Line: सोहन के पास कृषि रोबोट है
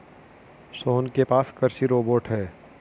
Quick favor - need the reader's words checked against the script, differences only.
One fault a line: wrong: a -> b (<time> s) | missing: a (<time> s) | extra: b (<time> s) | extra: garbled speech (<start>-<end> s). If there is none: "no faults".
no faults